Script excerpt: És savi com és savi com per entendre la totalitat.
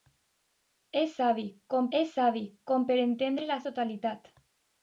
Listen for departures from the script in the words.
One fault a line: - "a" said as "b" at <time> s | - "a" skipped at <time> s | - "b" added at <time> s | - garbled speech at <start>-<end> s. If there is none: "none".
none